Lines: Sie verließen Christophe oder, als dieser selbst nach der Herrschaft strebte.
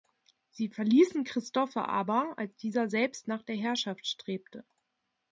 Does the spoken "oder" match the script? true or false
false